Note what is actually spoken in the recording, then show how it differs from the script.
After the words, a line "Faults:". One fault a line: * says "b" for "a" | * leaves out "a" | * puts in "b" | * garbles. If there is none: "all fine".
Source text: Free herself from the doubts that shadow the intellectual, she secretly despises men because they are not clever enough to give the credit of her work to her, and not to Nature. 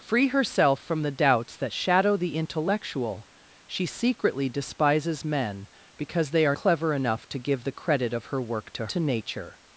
Free herself from the doubts that shadow the intellectual, she secretly despises men because they are clever enough to give the credit of her work to to Nature.
Faults:
* leaves out "not"
* leaves out "her and not"